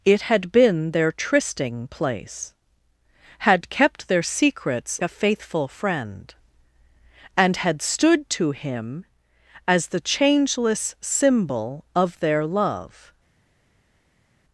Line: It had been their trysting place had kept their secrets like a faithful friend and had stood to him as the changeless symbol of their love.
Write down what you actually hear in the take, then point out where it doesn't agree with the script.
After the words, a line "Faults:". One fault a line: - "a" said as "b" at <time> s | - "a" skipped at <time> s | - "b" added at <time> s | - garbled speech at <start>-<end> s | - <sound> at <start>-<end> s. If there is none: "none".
It had been their trysting place had kept their secrets a faithful friend and had stood to him as the changeless symbol of their love.
Faults:
- "like" skipped at 5.0 s